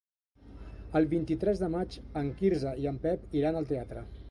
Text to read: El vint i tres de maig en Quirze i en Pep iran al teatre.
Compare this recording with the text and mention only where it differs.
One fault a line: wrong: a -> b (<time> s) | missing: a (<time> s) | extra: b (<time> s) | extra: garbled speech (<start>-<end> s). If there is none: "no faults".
no faults